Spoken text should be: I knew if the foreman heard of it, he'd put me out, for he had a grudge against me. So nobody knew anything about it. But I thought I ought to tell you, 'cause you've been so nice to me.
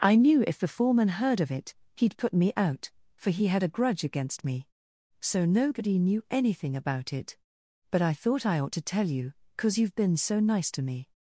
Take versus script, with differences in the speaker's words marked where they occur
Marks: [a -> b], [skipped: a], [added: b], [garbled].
I knew if the foreman heard of it, he'd put me out, for he had a grudge against me. So nobody knew anything about it. But I thought I ought to tell you, 'cause you've been so nice to me.